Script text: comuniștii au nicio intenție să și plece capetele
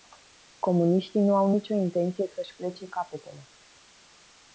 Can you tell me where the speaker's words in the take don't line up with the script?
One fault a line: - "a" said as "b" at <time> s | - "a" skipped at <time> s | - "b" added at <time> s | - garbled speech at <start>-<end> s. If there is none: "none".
- "nu" added at 1.2 s